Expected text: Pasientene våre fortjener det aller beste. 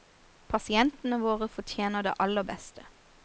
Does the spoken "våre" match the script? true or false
true